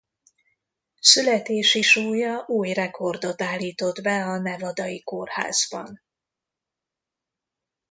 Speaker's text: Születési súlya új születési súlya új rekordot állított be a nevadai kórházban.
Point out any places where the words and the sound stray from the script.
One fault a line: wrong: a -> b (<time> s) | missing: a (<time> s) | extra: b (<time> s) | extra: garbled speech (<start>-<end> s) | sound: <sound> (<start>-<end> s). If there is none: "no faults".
missing: születési súlya új (2.7 s)